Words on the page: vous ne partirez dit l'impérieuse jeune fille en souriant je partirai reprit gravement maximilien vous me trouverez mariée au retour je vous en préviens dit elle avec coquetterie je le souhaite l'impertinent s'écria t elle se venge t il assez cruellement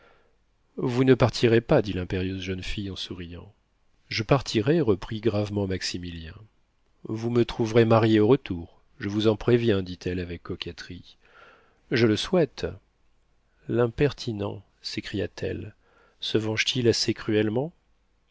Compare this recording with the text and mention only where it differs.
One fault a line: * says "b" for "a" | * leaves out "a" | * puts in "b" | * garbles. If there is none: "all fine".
* puts in "pas"